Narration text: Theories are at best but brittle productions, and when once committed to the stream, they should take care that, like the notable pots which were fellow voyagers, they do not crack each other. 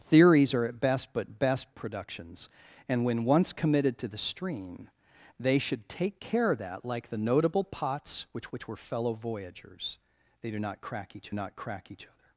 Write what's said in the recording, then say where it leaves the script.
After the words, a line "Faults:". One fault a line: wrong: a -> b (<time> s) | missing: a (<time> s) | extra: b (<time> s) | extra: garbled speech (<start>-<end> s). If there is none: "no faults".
Theories are at best but best productions, and when once committed to the stream, they should take care that, like the notable pots which which were fellow voyagers, they do not crack each not crack each other.
Faults:
wrong: brittle -> best (1.4 s)
extra: which (8.5 s)
extra: not crack each (11.3 s)